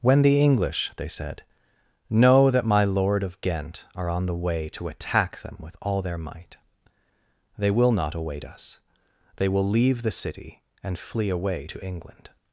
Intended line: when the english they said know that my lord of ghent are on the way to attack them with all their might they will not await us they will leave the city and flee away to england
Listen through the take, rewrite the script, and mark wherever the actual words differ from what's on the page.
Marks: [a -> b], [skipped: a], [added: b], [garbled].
when the english they said know that my lord of ghent are on the way to attack them with all their might they will not await us they will leave the city and flee away to england